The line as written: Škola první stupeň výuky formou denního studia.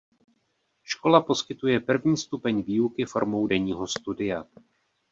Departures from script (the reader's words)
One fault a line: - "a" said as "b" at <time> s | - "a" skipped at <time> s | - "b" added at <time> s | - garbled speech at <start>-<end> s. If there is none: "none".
- "poskytuje" added at 1.2 s